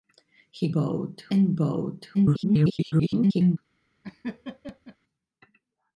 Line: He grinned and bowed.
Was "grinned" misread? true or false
true